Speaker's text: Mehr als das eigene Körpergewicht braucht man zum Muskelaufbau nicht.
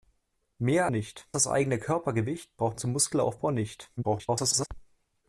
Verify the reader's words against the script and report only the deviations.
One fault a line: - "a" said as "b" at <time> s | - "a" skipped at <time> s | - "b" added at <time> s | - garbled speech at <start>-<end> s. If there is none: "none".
- "als" said as "nicht" at 0.9 s
- "man" skipped at 2.8 s
- garbled speech at 4.0-4.7 s